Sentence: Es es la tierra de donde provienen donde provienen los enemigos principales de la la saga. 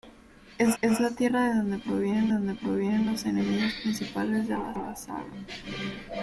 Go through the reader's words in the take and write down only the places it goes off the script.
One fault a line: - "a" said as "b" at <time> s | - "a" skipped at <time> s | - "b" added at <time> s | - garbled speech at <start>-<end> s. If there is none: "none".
none